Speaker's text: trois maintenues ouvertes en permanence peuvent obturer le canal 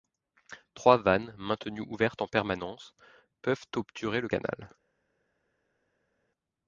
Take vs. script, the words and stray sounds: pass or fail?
fail